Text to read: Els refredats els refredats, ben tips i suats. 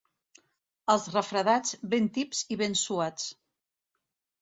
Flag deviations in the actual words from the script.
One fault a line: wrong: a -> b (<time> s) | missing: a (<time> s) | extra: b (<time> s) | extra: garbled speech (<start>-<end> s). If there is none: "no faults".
missing: els refredats (1.8 s)
extra: ben (2.7 s)